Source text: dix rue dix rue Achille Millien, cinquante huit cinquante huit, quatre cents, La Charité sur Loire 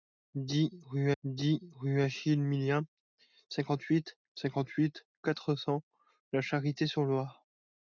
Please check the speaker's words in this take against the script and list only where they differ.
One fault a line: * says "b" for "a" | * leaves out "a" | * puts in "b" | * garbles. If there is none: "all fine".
all fine